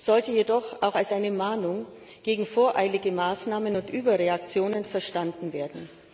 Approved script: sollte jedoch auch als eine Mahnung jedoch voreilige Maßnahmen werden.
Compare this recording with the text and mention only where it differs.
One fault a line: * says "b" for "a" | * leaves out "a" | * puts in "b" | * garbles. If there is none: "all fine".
* says "gegen" for "jedoch"
* puts in "und Überreaktionen verstanden"